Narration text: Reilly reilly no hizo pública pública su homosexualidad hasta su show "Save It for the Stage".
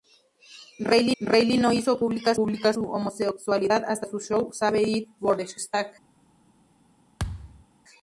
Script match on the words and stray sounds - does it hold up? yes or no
no